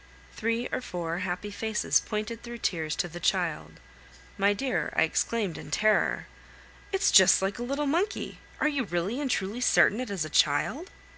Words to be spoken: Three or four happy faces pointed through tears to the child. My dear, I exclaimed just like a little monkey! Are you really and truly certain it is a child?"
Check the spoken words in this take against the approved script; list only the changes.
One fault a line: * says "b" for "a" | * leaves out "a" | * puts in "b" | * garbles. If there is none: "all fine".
* puts in "in terror It's"